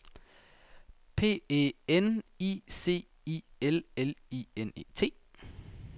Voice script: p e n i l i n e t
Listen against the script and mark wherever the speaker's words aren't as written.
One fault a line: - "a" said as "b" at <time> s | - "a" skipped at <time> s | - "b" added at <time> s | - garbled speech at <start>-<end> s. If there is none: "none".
- "c i l" added at 2.7 s